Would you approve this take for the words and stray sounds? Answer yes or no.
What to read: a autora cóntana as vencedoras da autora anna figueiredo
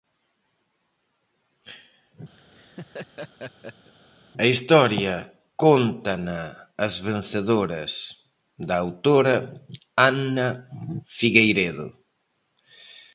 no